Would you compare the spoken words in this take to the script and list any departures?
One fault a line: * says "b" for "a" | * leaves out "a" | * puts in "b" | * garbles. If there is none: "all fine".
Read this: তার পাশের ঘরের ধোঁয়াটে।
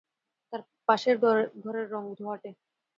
* puts in "রঙ"